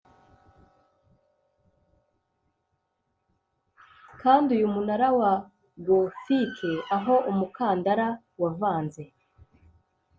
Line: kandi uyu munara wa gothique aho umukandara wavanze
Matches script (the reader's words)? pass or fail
pass